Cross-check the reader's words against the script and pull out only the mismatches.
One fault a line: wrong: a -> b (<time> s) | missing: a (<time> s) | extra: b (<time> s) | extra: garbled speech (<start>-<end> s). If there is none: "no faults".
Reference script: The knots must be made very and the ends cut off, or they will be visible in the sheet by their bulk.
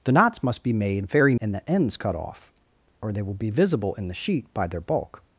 no faults